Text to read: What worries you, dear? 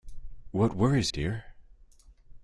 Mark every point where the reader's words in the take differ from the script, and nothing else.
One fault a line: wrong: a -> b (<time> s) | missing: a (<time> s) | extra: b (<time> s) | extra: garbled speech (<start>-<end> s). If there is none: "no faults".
missing: you (1.1 s)